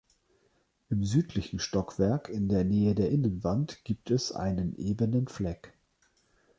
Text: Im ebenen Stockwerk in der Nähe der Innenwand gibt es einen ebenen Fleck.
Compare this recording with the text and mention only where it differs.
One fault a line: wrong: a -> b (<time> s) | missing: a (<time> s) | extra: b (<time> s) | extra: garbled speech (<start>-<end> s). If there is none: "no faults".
wrong: ebenen -> südlichen (1.1 s)